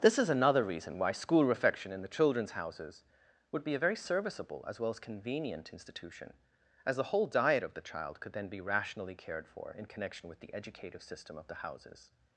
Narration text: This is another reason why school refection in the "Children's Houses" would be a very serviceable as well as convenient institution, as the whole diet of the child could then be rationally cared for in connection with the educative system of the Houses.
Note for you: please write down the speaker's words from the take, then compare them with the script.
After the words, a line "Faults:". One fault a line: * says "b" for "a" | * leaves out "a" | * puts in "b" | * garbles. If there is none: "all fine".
This is another reason why school refection in the "Children's Houses" would be a very serviceable as well as convenient institution, as the whole diet of the child could then be rationally cared for in connection with the educative system of the Houses.
Faults:
all fine